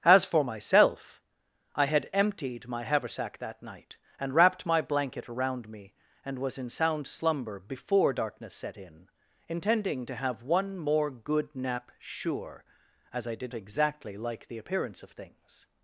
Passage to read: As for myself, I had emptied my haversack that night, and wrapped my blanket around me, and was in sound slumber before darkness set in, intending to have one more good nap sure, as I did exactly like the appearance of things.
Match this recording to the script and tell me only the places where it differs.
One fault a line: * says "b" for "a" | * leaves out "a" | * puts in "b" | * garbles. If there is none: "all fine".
all fine